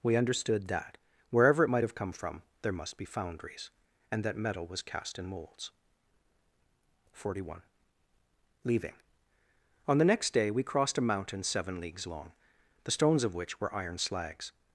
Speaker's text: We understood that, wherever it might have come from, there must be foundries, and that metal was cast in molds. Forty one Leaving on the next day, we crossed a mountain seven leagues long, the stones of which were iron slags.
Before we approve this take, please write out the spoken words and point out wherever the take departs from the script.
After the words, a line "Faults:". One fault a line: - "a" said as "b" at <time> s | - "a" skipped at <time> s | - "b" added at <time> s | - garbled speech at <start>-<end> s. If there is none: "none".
We understood that, wherever it might have come from, there must be foundries, and that metal was cast in molds. Forty one Leaving on the next day, we crossed a mountain seven leagues long, the stones of which were iron slags.
Faults:
none